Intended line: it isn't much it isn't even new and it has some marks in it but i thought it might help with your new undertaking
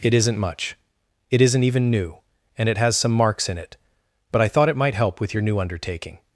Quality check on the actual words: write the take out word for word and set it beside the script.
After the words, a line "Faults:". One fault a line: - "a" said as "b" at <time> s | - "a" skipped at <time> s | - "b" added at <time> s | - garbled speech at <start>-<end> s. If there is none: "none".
it isn't much it isn't even new and it has some marks in it but i thought it might help with your new undertaking
Faults:
none